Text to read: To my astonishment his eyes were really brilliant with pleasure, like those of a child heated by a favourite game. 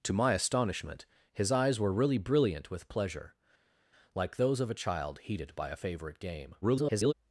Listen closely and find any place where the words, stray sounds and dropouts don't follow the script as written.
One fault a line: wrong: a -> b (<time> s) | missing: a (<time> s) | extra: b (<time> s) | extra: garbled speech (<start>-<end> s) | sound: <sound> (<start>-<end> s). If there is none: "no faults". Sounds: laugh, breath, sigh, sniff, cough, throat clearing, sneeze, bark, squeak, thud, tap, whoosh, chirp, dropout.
extra: garbled speech (6.6-7.1 s)